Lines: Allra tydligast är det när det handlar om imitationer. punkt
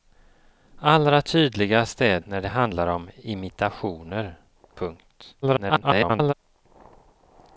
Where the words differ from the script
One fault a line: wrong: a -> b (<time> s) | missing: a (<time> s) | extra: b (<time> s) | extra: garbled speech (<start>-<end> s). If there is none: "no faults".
missing: det (2.2 s)
extra: garbled speech (5.4-6.3 s)